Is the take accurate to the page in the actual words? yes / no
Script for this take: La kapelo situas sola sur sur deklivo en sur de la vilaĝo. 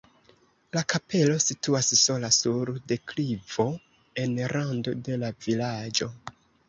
no